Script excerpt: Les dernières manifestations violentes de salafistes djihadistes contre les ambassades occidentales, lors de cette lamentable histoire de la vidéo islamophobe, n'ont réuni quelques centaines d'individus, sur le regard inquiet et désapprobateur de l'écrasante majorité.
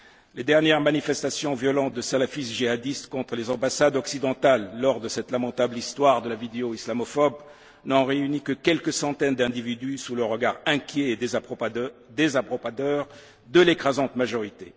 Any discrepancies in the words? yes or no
yes